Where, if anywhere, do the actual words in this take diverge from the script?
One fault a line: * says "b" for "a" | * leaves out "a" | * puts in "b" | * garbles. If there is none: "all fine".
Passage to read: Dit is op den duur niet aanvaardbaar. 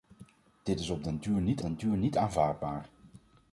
* puts in "den duur niet"